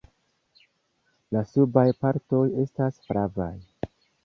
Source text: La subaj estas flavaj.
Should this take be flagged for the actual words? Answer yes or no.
yes